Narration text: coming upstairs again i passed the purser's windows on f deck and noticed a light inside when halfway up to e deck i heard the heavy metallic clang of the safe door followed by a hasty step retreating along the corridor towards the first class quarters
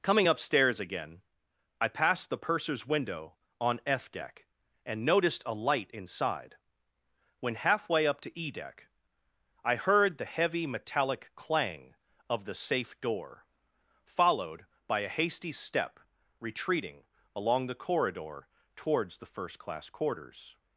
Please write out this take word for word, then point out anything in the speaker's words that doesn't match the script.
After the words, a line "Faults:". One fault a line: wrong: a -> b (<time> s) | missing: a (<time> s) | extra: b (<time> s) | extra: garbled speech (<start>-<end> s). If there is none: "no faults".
coming upstairs again i passed the purser's window on f deck and noticed a light inside when halfway up to e deck i heard the heavy metallic clang of the safe door followed by a hasty step retreating along the corridor towards the first class quarters
Faults:
wrong: windows -> window (2.9 s)